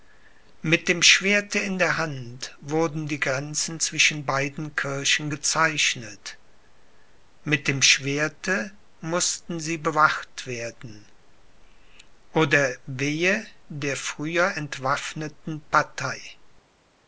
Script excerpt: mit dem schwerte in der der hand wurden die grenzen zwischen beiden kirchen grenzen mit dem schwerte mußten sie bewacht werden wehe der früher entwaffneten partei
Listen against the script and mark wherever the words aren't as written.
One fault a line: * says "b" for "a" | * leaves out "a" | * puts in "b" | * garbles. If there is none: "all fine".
* leaves out "der"
* says "gezeichnet" for "grenzen"
* puts in "oder"